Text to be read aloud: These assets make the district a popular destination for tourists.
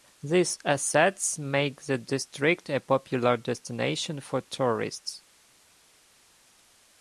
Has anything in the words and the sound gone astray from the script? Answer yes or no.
no